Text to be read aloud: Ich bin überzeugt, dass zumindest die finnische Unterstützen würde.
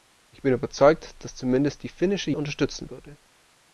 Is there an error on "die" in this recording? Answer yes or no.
no